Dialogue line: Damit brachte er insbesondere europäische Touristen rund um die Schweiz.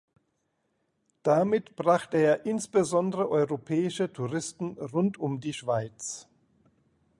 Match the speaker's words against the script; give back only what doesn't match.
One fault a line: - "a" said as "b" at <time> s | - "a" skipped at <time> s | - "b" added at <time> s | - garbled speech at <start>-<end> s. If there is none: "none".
none